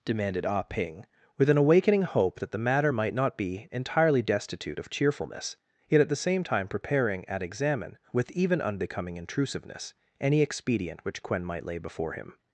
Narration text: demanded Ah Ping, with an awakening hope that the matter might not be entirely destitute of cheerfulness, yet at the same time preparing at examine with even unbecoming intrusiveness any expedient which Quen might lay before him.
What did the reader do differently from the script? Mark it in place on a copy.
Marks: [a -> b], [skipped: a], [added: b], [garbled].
demanded Ah Ping, with an awakening hope that the matter might not be entirely destitute of cheerfulness, yet at the same time preparing at examine with even unbecoming intrusiveness any expedient which Quen might lay before him.